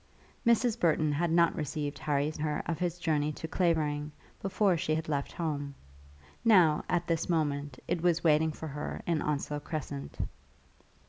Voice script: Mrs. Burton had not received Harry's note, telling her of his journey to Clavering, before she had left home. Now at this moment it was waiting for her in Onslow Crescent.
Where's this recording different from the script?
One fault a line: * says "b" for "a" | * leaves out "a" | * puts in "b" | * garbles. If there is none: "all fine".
* leaves out "note telling"